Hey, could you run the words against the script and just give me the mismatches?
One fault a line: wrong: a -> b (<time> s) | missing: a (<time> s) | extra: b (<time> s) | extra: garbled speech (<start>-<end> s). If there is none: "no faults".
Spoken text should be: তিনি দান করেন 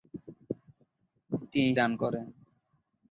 no faults